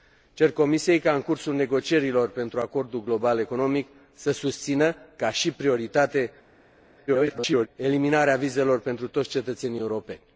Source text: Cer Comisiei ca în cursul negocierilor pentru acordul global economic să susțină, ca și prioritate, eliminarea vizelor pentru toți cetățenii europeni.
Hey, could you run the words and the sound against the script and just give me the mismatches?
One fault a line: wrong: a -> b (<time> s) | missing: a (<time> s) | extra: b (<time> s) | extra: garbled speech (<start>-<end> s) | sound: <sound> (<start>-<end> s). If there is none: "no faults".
extra: garbled speech (7.1-7.7 s)